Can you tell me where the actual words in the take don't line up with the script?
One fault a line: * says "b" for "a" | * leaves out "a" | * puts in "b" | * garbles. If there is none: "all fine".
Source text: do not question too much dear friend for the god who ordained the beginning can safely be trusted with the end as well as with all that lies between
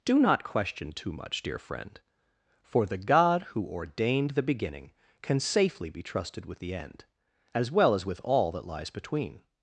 all fine